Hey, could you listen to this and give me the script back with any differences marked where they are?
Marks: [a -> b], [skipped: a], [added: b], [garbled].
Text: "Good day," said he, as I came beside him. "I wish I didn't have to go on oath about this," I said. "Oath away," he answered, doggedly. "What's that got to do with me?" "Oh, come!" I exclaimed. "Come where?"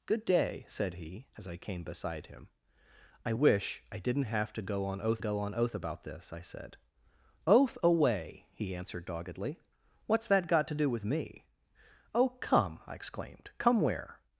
"Good day," said he, as I came beside him. "I wish I didn't have to go on oath [added: go on oath] about this," I said. "Oath away," he answered, doggedly. "What's that got to do with me?" "Oh, come!" I exclaimed. "Come where?"